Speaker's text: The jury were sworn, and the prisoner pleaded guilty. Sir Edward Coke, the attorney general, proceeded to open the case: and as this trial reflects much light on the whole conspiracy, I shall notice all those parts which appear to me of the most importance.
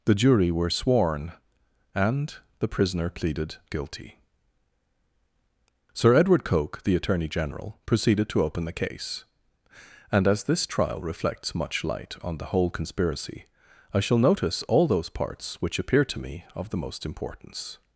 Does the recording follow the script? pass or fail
pass